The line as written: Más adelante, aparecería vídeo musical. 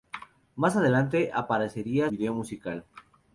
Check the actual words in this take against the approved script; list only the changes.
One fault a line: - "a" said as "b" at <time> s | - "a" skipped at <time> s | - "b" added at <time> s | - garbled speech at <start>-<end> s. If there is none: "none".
none